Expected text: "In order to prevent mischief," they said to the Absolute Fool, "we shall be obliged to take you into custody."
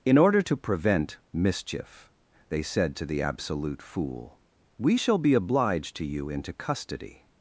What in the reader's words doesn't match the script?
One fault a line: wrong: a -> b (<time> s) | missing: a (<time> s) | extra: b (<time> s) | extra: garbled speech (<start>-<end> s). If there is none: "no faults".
missing: take (6.0 s)